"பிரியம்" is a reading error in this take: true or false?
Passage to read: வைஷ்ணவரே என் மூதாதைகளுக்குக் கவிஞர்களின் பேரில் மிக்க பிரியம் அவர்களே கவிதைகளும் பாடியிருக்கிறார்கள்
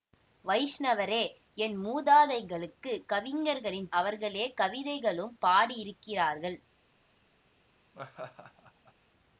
true